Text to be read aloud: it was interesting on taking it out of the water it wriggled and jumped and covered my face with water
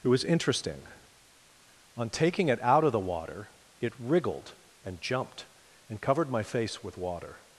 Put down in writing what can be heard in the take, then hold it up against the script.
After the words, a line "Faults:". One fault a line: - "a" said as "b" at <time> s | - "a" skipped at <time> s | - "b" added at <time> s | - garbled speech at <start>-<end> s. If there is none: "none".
it was interesting on taking it out of the water it wriggled and jumped and covered my face with water
Faults:
none